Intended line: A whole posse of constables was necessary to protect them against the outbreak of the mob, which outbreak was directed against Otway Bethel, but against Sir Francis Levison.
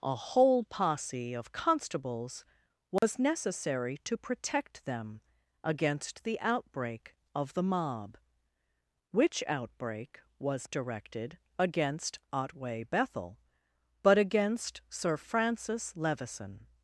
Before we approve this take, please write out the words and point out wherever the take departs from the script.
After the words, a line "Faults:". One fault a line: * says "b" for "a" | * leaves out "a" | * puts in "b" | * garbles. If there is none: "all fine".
A whole posse of constables was necessary to protect them against the outbreak of the mob, which outbreak was directed against Otway Bethel, but against Sir Francis Levison.
Faults:
all fine